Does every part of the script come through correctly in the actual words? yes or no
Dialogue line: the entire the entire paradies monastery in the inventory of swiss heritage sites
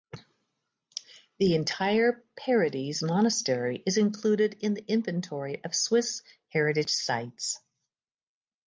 no